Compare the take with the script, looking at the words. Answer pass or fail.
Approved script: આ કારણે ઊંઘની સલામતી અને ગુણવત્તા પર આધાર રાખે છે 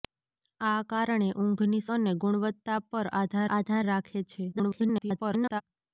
fail